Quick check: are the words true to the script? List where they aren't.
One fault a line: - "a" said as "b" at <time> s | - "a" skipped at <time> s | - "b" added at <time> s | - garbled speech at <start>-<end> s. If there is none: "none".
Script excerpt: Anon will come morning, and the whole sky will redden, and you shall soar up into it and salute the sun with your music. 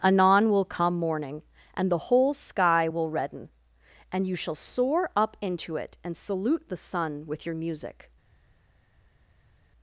none